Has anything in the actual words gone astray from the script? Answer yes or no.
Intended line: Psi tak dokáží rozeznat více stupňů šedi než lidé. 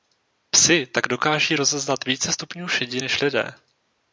no